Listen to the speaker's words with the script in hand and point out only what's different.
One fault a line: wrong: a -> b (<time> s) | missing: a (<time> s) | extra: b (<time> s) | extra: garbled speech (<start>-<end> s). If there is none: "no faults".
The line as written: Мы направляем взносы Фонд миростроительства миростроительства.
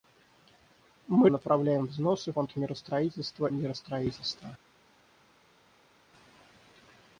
no faults